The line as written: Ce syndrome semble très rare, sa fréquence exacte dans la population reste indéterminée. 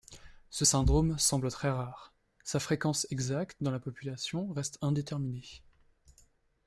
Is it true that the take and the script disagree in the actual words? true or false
false